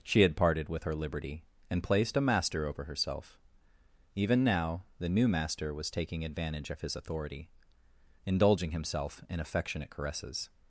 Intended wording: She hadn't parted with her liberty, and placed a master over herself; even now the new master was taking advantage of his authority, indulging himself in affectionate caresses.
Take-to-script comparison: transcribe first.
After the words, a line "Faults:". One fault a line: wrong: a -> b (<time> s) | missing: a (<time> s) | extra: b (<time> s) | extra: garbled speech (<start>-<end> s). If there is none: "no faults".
She had parted with her liberty, and placed a master over herself; even now the new master was taking advantage of his authority, indulging himself in affectionate caresses.
Faults:
wrong: hadn't -> had (0.2 s)